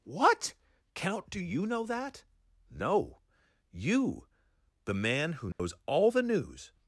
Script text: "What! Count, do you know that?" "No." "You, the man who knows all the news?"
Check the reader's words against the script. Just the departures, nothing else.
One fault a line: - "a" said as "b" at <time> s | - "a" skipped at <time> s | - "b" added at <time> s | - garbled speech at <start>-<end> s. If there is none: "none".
none